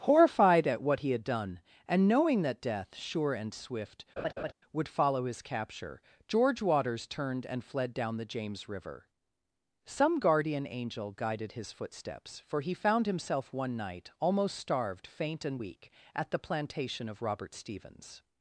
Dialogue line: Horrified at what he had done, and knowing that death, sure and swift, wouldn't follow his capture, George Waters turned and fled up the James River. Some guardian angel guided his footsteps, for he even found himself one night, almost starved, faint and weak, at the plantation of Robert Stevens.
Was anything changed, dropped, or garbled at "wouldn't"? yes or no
yes